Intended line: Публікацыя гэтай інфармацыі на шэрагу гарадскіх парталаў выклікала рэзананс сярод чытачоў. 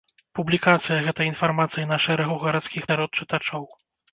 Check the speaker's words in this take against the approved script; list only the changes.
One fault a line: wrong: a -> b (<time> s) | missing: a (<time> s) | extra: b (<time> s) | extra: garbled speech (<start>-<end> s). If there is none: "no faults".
missing: парталаў выклікала рэзананс (2.8 s)